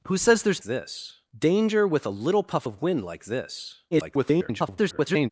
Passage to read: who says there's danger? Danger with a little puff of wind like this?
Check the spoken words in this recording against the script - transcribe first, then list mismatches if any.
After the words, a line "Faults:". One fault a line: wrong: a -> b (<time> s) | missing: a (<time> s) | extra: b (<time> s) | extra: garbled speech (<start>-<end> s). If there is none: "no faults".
who says there's this? Danger with a little puff of wind like this? [garbled]
Faults:
wrong: danger -> this (0.6 s)
extra: garbled speech (3.9-5.3 s)